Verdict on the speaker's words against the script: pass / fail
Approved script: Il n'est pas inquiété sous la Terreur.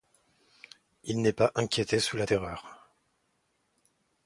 pass